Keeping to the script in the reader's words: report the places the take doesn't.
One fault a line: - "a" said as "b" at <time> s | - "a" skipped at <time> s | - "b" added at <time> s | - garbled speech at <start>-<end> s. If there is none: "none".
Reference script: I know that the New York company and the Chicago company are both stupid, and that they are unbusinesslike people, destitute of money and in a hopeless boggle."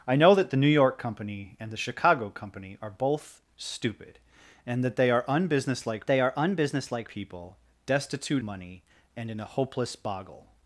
- "they are unbusinesslike" added at 6.1 s
- "of" skipped at 8.4 s